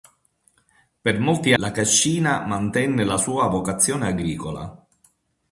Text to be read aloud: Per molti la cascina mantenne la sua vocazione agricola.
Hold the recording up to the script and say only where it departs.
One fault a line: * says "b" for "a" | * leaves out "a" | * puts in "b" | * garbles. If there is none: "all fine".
all fine